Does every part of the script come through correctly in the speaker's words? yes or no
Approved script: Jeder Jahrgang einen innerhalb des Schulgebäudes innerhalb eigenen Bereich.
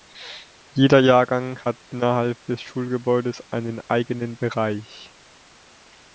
no